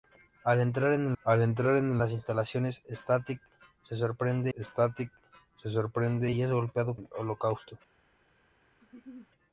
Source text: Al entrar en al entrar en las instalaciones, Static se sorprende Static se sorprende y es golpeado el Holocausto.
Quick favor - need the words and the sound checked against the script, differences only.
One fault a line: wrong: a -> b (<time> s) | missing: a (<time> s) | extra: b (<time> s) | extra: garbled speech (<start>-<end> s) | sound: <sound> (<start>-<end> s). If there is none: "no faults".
sound: laugh (8.8-9.3 s)